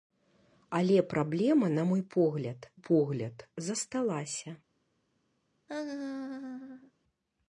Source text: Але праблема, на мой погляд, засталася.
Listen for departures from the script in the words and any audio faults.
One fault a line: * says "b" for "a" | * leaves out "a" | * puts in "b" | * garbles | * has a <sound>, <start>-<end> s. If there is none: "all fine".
* puts in "погляд"
* has a laugh, 5.7-6.9 s